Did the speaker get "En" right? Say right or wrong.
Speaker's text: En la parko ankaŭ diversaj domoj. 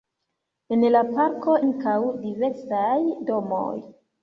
right